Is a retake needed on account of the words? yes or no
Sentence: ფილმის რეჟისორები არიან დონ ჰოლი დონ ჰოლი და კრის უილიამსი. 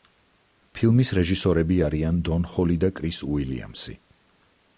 yes